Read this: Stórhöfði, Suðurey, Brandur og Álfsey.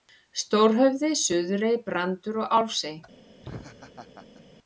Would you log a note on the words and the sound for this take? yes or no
yes